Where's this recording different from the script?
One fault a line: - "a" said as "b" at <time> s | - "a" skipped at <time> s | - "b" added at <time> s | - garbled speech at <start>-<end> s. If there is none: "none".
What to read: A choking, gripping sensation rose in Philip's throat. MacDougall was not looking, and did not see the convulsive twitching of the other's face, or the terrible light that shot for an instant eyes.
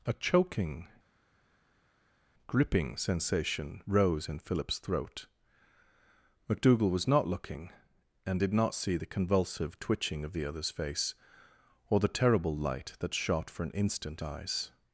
none